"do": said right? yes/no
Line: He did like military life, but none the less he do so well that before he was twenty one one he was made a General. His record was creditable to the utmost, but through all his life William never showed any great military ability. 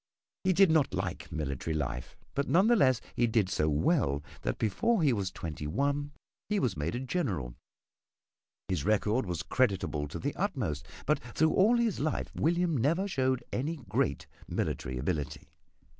no